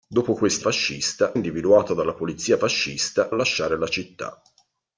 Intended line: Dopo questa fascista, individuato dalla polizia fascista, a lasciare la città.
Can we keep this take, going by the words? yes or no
yes